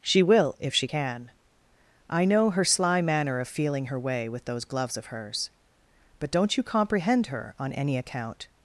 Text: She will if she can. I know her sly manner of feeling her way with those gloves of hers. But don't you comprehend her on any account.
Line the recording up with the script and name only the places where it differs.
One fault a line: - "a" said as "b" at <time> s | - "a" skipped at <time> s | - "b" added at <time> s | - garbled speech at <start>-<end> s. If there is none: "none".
none